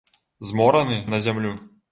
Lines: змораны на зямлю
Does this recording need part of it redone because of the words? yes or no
no